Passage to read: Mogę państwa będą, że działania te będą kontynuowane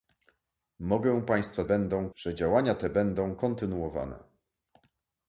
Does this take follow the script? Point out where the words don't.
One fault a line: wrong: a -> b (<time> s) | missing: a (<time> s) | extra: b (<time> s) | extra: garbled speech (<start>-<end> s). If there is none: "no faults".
no faults